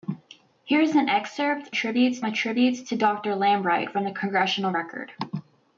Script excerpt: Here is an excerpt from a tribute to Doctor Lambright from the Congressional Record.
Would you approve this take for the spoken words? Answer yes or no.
no